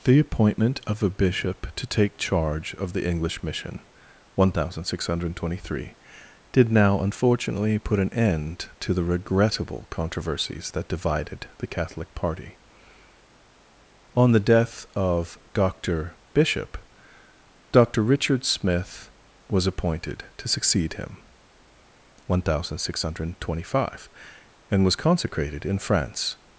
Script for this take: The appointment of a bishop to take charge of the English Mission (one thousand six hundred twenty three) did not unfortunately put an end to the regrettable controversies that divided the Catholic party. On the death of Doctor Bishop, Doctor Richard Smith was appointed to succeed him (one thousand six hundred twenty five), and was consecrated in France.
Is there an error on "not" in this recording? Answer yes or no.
yes